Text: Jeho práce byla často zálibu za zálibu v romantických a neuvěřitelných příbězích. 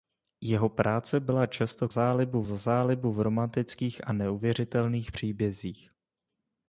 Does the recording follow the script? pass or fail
pass